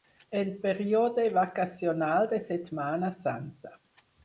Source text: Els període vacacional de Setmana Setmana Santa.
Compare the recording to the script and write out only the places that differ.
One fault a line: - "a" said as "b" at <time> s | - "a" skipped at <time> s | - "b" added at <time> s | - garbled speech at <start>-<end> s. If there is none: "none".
- "Els" said as "El" at 0.3 s
- "Setmana" skipped at 3.1 s